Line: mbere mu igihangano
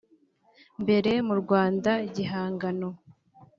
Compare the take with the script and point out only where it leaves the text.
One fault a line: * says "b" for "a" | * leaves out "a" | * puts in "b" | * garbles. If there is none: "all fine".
* puts in "rwanda"